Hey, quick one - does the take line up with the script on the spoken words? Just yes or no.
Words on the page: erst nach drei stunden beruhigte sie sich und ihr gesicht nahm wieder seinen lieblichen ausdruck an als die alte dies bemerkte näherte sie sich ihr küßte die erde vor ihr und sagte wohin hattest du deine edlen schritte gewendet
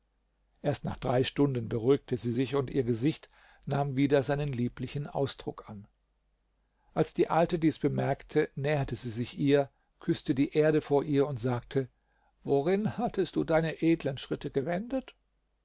yes